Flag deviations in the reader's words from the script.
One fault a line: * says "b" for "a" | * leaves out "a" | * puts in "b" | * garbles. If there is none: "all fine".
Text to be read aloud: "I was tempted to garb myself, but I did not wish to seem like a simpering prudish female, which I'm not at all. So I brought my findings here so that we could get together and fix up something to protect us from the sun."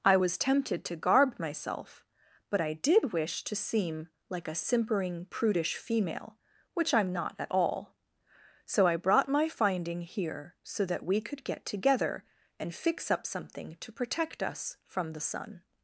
* leaves out "not"
* says "finding" for "findings"